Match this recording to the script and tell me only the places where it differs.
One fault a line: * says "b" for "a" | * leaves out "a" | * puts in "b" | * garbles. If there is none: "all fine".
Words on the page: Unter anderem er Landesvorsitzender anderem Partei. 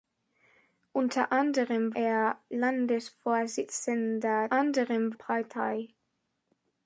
all fine